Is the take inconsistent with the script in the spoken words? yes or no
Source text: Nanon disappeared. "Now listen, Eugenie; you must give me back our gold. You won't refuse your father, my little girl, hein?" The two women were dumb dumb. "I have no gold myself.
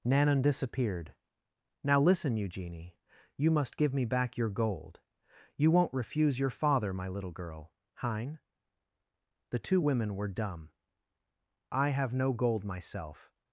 yes